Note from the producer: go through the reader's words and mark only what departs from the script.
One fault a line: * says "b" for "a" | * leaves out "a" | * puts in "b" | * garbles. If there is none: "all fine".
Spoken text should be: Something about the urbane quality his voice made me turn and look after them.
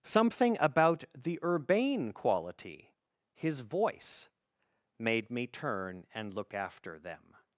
all fine